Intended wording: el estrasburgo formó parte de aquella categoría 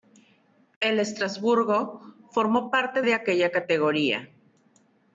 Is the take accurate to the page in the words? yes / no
yes